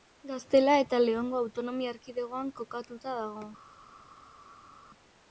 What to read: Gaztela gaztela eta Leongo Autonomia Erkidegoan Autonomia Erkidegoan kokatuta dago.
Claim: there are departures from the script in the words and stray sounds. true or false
true